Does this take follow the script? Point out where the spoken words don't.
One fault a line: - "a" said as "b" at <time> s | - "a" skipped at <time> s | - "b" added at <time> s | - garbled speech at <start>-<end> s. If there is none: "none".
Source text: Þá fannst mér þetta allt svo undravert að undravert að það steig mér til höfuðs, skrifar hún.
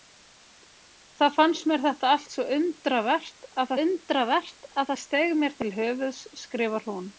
none